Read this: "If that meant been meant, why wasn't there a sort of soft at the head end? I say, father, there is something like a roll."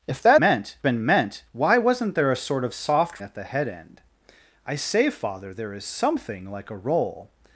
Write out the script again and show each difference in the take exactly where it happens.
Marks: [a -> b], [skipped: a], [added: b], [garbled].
"If that meant been meant, why wasn't there a sort of soft at the head end? I say, father, there is something like a roll."